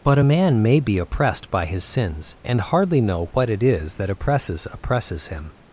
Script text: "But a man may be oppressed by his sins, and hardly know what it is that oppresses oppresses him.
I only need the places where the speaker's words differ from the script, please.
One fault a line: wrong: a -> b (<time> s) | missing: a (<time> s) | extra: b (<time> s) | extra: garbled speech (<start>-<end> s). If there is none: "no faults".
no faults